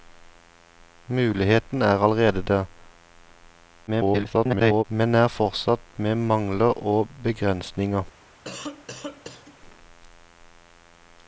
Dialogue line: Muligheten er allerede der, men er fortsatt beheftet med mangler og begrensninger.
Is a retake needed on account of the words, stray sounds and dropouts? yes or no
yes